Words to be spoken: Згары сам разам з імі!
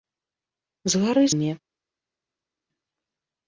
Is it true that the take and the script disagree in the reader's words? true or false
true